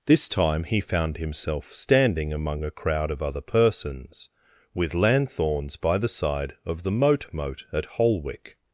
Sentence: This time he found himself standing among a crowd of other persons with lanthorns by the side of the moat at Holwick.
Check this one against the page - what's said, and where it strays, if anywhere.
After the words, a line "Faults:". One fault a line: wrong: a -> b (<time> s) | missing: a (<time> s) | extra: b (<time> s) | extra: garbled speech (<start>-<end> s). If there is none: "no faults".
This time he found himself standing among a crowd of other persons with lanthorns by the side of the moat moat at Holwick.
Faults:
extra: moat (7.3 s)